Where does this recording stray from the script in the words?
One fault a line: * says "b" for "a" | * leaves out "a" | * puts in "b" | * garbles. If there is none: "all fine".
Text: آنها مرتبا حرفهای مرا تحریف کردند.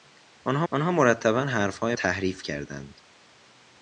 * puts in "آنها"
* leaves out "مرا"